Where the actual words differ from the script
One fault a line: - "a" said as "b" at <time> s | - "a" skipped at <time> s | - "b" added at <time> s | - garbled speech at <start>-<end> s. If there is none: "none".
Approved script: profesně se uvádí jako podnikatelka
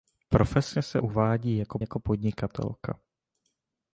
- "jako" added at 1.8 s